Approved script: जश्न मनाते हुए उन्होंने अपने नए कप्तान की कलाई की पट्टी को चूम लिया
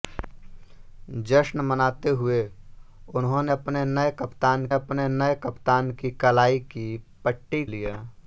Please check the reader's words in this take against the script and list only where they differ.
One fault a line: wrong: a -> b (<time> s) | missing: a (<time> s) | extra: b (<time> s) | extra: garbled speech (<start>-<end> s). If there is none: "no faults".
extra: अपने नए कप्तान (4.7 s)
missing: को चूम (7.6 s)